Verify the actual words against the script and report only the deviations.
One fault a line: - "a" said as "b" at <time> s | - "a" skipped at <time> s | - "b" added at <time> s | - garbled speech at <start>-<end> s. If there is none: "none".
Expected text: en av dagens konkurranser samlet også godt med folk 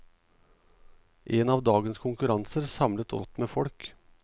- "også" skipped at 3.1 s